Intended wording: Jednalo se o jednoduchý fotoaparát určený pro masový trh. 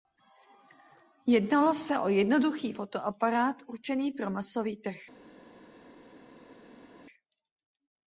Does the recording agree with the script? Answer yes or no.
yes